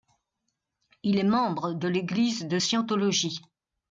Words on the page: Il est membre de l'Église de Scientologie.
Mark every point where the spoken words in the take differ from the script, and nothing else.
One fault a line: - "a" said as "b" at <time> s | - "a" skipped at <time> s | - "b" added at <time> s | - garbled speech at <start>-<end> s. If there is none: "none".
none